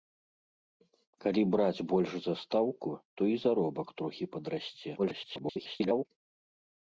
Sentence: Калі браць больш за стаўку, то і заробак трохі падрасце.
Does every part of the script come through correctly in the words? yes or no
no